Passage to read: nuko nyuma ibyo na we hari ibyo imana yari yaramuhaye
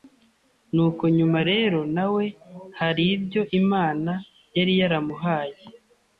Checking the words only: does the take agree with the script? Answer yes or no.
no